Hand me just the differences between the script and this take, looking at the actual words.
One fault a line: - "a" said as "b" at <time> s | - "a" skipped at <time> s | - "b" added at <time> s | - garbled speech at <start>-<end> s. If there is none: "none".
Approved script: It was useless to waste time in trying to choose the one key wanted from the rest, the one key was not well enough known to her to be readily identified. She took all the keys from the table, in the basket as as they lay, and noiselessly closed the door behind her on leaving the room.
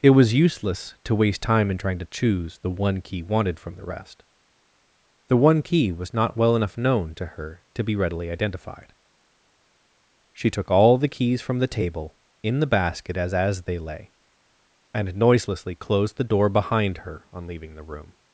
none